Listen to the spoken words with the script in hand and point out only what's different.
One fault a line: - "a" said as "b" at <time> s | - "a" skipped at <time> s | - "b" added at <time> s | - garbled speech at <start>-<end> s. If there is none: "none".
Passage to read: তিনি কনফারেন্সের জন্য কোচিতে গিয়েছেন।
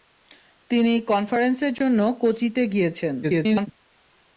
- garbled speech at 3.2-3.7 s